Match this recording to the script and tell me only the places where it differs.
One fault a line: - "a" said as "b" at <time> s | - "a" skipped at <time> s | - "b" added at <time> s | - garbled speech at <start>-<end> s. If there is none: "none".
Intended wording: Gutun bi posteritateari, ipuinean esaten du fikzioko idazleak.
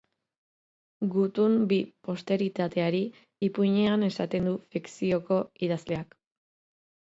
none